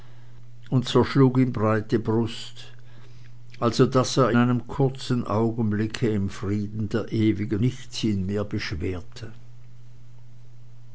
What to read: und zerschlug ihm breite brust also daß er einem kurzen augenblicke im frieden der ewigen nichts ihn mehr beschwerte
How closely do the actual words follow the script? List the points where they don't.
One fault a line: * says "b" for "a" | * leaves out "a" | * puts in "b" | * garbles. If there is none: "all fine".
all fine